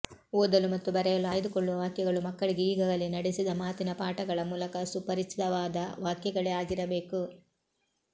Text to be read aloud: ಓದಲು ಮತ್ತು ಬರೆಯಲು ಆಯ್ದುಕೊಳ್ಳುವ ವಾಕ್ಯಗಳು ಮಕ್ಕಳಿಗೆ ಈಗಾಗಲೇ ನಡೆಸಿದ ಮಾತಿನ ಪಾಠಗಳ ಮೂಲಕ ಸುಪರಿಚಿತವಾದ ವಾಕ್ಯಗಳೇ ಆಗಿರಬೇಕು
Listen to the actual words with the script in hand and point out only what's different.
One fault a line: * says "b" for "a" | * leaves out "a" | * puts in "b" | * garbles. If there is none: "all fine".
all fine